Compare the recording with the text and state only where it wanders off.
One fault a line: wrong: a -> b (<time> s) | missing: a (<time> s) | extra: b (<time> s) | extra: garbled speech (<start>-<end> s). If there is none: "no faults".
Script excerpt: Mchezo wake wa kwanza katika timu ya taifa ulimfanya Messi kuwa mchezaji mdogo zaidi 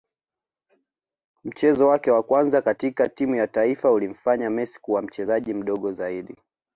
no faults